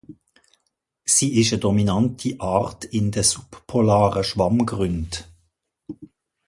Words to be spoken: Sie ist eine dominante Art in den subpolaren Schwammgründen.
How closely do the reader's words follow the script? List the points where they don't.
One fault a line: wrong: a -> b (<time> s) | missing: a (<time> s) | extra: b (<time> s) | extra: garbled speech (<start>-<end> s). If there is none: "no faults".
no faults